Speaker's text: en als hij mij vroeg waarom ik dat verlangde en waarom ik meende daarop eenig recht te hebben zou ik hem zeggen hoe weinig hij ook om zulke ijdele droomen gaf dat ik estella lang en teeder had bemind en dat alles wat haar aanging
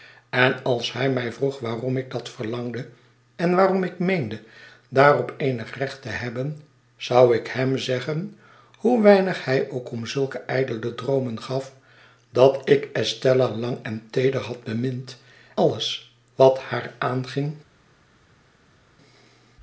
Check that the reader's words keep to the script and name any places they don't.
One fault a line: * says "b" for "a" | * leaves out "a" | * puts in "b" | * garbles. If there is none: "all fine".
* leaves out "en dat"